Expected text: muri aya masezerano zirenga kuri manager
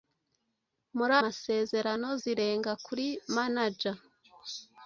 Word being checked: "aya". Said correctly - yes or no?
no